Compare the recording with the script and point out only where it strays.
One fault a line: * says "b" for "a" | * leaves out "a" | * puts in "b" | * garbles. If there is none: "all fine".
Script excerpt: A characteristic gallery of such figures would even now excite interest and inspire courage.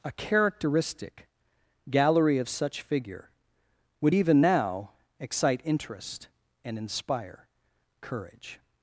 * says "figure" for "figures"